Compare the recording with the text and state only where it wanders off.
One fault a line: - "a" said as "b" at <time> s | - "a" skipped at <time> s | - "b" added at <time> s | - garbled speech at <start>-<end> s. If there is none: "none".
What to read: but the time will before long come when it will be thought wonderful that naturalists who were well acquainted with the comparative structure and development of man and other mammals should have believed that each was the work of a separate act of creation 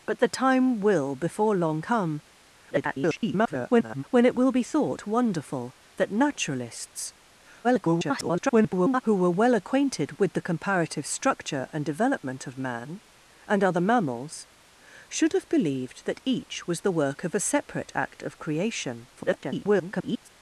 - garbled speech at 2.7-4.0 s
- garbled speech at 7.6-9.0 s
- garbled speech at 19.2-20.3 s